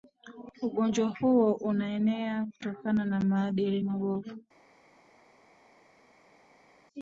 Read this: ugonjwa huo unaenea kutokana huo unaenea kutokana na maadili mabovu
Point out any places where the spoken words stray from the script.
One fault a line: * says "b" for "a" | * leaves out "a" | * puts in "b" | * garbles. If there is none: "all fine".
* leaves out "huo unaenea kutokana"